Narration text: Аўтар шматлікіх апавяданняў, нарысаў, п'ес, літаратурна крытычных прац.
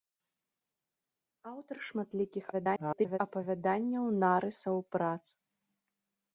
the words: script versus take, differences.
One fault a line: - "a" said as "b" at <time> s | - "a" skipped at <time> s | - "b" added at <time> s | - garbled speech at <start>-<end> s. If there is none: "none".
- garbled speech at 2.5-3.2 s
- "п'ес літаратурна крытычных" skipped at 4.8 s